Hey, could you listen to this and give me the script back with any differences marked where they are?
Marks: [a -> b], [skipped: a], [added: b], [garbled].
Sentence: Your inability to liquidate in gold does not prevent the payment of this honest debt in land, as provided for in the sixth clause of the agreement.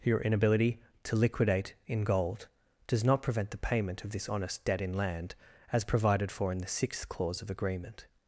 Your inability to liquidate in gold does not prevent the payment of this honest debt in land, as provided for in the sixth clause of [skipped: the] agreement.